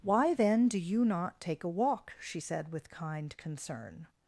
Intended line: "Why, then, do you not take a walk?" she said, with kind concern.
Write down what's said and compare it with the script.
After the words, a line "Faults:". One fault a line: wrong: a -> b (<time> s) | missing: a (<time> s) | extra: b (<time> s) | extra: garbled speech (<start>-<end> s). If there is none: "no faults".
"Why, then, do you not take a walk?" she said, with kind concern.
Faults:
no faults